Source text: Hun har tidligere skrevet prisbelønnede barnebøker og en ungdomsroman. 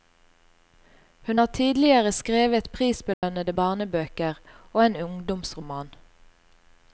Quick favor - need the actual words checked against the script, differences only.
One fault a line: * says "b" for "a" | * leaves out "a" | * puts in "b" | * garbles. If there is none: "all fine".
all fine